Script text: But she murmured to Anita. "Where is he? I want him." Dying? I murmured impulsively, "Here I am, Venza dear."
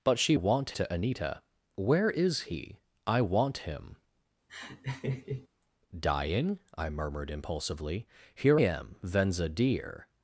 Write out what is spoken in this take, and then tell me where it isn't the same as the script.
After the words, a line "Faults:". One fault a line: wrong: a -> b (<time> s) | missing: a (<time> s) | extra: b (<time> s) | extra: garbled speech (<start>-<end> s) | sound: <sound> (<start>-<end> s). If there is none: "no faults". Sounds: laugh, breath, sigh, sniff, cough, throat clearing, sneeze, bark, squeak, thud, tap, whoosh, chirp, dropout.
But she want to Anita. "Where is he? I want him." Dying? I murmured impulsively, "Here am, Venza dear."
Faults:
wrong: murmured -> want (0.3 s)
sound: laugh (4.5-5.5 s)
missing: I (8.6 s)